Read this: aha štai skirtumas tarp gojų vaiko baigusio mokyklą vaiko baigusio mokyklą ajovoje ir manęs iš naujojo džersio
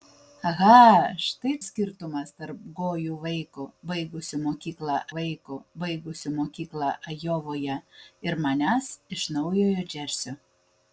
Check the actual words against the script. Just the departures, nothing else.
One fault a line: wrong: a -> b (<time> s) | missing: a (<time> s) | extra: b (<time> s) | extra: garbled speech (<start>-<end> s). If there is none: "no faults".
no faults